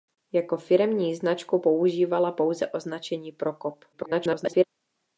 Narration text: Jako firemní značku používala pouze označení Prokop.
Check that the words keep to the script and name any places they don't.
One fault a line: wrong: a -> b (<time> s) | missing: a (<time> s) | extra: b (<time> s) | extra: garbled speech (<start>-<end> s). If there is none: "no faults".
extra: garbled speech (3.9-4.6 s)